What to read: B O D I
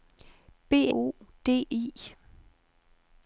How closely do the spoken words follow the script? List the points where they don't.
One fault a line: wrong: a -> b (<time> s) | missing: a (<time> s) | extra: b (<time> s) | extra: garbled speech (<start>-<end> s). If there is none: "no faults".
no faults